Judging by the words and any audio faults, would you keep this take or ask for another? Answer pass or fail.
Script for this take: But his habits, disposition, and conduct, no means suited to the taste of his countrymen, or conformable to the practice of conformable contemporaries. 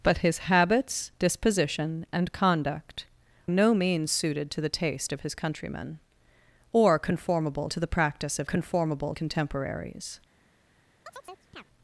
fail